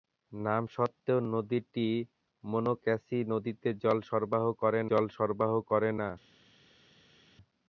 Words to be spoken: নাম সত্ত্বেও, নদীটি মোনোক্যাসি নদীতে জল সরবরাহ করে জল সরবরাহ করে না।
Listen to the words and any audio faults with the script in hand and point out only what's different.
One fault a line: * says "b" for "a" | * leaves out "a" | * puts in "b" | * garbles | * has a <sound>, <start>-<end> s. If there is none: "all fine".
all fine